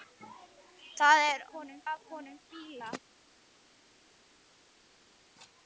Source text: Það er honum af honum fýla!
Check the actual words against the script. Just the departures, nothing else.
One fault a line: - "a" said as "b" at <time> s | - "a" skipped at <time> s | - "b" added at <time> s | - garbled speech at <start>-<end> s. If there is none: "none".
none